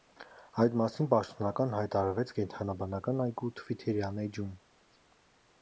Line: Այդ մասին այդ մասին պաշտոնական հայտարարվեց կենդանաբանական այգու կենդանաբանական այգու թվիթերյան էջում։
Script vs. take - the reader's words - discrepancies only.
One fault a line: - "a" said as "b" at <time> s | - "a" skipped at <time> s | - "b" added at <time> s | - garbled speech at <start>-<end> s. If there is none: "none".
- "այդ մասին" skipped at 1.1 s
- "կենդանաբանական այգու" skipped at 3.5 s